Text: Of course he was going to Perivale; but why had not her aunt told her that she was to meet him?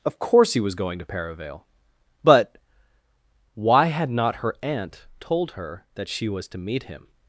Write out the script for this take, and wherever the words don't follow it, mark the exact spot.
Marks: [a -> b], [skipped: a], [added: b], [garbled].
Of course he was going to Perivale; but why had not her aunt told her that she was to meet him?